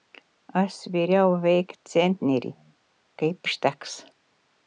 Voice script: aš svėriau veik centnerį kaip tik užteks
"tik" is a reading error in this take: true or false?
true